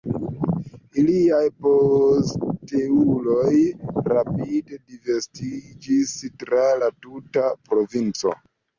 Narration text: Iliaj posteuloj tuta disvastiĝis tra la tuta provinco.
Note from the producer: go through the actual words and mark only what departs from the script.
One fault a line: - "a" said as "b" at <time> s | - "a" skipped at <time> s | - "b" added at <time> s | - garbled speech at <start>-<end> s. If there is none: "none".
- "tuta" said as "rapide" at 4.1 s